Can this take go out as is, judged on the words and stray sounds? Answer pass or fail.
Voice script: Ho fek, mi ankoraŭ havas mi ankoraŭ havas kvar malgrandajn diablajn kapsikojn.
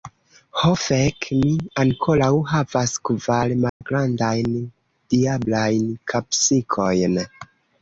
fail